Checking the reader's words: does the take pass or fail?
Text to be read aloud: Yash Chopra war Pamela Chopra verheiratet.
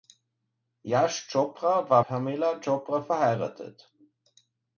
pass